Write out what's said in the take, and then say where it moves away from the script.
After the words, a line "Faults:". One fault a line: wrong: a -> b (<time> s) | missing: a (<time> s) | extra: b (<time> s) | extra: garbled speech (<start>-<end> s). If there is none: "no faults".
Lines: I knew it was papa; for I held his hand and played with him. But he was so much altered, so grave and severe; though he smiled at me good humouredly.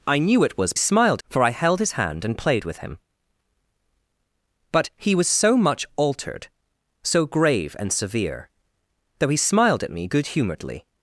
I knew it was smiled; for I held his hand and played with him. But he was so much altered, so grave and severe; though he smiled at me good humouredly.
Faults:
wrong: papa -> smiled (0.8 s)